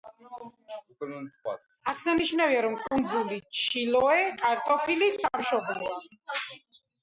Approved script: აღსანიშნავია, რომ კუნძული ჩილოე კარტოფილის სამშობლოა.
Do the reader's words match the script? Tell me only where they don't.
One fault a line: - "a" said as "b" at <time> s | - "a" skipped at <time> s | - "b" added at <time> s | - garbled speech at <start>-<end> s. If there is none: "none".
none